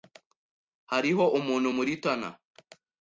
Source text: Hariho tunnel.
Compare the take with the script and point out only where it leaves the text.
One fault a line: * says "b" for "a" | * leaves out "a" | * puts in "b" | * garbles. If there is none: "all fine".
* puts in "umuntu muri"